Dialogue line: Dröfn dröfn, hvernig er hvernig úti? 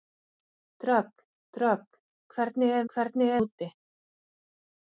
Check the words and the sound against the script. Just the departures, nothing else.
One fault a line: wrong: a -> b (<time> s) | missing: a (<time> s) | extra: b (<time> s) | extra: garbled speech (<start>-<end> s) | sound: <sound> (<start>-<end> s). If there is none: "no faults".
no faults